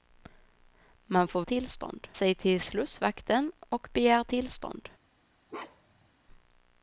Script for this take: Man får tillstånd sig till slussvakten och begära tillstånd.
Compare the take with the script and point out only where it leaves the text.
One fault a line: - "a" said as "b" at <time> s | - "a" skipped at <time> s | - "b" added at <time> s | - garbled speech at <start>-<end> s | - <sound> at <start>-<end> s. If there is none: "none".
- bark at 5.5-6.1 s